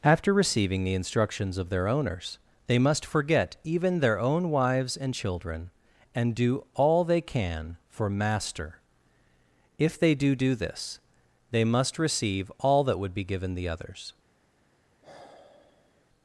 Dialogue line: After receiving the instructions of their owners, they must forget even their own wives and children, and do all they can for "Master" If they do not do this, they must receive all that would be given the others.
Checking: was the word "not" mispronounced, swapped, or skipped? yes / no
yes